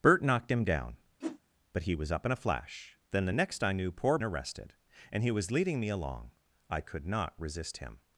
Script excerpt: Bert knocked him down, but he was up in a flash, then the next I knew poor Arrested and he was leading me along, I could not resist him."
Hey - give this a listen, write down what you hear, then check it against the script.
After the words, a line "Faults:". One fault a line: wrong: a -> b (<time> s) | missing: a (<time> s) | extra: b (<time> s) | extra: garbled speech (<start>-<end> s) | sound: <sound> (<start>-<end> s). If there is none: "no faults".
Bert knocked him down, but he was up in a flash, then the next I knew poor Arrested and he was leading me along, I could not resist him."
Faults:
sound: whoosh (1.2-1.4 s)